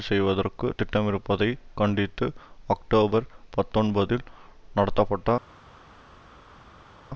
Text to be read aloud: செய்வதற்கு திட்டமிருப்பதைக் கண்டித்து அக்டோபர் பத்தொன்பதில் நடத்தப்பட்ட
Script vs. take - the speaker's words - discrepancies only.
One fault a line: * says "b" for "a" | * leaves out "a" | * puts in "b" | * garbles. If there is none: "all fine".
all fine